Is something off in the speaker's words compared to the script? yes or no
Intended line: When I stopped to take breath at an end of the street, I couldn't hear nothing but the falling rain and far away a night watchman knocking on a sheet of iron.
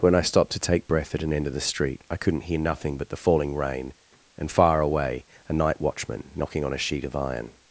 no